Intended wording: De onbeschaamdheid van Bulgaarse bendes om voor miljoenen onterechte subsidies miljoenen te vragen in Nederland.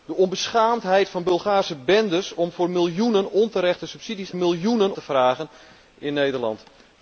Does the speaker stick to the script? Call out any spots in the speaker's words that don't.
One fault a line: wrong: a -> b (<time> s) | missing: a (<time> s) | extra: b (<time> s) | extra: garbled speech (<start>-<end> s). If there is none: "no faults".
no faults